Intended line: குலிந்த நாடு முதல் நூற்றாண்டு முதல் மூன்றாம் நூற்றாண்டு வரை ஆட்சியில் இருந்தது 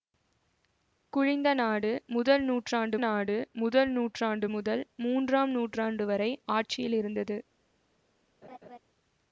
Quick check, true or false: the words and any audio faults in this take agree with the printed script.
false